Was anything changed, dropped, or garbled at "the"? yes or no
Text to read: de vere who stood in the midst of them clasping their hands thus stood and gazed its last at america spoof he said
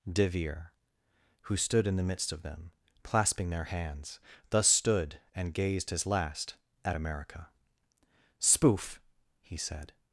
no